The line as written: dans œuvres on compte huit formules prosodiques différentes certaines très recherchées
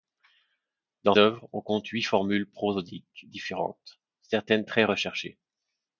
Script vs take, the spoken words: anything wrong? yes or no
no